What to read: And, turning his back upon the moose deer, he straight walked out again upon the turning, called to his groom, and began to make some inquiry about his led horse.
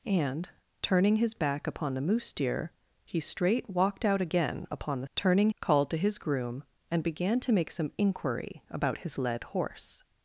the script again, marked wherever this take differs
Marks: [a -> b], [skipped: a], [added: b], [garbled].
And, turning his back upon the moose deer, he straight walked out again upon the turning, called to his groom, and began to make some inquiry about his led horse.